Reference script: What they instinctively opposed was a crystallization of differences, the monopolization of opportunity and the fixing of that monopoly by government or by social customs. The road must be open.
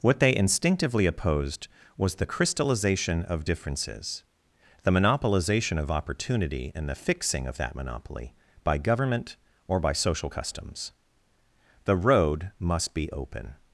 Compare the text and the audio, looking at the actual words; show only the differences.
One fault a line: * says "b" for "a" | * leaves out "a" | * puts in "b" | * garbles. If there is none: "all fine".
* says "the" for "a"